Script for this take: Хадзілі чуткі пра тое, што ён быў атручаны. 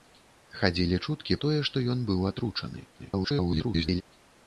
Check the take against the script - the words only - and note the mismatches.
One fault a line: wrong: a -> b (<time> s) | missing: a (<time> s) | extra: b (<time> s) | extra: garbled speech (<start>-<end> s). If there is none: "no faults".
missing: пра (1.4 s)
extra: garbled speech (3.0-4.0 s)